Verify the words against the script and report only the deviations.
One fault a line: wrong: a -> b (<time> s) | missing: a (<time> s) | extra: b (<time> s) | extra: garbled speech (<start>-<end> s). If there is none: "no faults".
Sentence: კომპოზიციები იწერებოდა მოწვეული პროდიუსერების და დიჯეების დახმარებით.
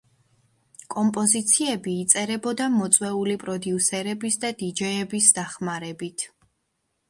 no faults